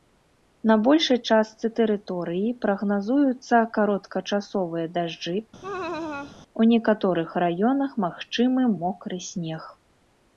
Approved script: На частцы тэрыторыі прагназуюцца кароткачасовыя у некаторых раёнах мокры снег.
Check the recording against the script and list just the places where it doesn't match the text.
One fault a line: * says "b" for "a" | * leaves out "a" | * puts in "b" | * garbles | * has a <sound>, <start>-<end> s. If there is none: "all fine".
* puts in "большай"
* puts in "дажджы"
* has a laugh, 5.6-6.4 s
* puts in "магчымы"